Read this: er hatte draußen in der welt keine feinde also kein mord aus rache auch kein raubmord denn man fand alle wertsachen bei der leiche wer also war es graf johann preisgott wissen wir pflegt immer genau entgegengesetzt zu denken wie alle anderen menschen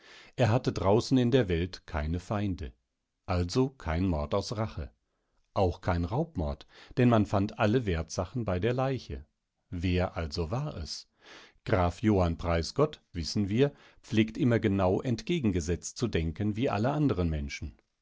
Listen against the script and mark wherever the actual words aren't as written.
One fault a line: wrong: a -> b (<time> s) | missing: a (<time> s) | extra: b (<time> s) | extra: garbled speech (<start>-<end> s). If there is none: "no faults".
no faults